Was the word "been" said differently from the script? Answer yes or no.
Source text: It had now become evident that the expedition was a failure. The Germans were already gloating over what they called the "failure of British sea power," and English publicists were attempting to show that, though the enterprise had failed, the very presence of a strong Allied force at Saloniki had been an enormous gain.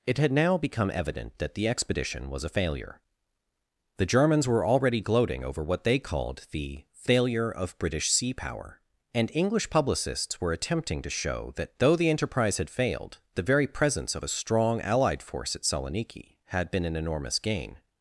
no